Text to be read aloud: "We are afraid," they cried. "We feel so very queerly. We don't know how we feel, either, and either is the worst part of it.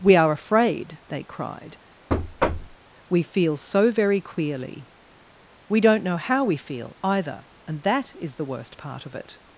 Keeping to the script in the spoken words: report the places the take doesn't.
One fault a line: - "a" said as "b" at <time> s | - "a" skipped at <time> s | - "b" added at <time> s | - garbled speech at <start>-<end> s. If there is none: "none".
- "either" said as "that" at 7.8 s